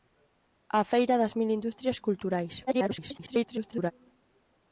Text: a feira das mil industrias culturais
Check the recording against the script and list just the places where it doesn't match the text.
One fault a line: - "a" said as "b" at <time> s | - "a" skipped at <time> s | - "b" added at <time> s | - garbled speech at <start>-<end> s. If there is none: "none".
- garbled speech at 2.7-3.9 s